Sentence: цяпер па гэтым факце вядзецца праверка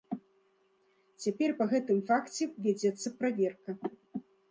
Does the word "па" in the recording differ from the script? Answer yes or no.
no